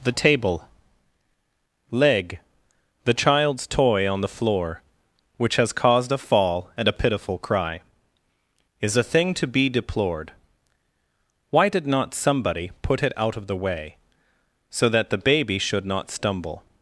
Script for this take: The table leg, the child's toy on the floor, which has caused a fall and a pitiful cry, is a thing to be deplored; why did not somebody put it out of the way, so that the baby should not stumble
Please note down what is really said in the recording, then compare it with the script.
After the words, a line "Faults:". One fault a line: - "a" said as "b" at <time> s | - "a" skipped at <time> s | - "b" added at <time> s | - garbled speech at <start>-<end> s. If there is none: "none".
The table leg, the child's toy on the floor, which has caused a fall and a pitiful cry, is a thing to be deplored; why did not somebody put it out of the way, so that the baby should not stumble
Faults:
none